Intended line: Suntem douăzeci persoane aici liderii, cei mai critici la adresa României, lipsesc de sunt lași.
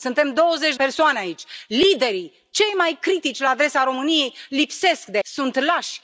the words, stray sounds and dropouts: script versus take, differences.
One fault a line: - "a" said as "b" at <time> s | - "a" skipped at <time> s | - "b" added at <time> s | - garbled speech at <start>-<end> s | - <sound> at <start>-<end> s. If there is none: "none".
none